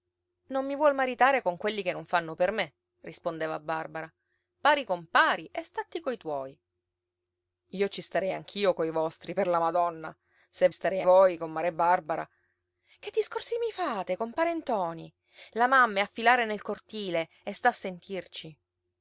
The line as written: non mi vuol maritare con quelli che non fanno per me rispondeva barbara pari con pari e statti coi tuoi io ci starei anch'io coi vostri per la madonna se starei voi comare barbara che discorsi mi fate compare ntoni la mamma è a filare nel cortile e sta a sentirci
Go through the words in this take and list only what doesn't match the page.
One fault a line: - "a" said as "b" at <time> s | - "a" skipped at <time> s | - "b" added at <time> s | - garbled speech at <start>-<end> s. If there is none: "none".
none